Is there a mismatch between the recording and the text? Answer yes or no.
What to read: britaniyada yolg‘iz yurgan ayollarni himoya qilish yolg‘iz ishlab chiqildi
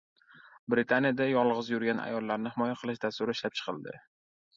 yes